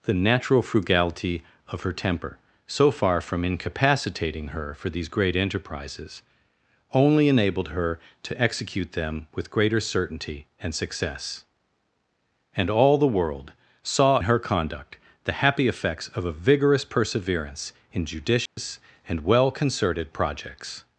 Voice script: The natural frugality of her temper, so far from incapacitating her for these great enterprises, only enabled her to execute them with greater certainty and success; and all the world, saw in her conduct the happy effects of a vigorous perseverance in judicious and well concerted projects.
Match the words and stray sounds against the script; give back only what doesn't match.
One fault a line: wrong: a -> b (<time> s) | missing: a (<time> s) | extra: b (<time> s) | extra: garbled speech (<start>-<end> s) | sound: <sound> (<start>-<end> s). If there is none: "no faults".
missing: in (14.2 s)
sound: dropout (18.5-18.6 s)